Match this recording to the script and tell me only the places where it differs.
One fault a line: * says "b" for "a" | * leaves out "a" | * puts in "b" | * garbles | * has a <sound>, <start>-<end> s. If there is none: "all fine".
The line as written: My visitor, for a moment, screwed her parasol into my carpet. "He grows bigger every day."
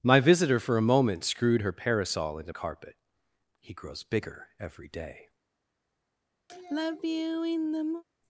* leaves out "my"
* has a sigh, 6.5-8.0 s